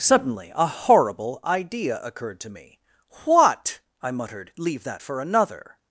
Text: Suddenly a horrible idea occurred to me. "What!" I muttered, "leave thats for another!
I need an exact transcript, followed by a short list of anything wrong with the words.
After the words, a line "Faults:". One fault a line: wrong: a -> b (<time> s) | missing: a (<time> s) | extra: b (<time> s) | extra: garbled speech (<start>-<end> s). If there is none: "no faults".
Suddenly a horrible idea occurred to me. "What!" I muttered, "leave that for another!
Faults:
wrong: thats -> that (4.8 s)